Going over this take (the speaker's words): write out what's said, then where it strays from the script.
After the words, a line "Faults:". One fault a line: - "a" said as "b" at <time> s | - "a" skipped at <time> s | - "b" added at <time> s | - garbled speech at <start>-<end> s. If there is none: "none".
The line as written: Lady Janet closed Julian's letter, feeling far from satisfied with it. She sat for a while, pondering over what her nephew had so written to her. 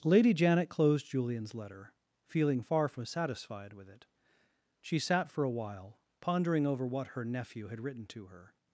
Lady Janet closed Julian's letter, feeling far from satisfied with it. She sat for a while, pondering over what her nephew had written to her.
Faults:
- "so" skipped at 7.8 s